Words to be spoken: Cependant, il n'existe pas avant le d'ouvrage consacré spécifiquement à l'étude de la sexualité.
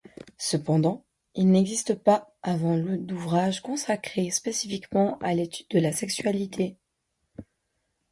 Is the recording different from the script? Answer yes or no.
no